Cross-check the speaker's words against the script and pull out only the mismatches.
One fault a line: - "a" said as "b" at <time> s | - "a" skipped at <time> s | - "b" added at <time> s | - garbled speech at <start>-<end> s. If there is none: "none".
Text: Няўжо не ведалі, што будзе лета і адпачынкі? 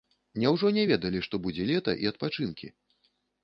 none